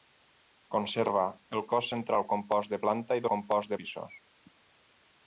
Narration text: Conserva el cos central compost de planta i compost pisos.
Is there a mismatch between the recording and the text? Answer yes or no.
no